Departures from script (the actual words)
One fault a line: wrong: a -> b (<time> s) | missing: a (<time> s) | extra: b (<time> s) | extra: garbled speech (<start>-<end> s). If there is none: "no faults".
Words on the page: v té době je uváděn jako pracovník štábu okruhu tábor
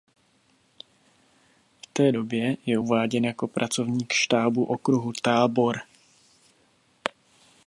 no faults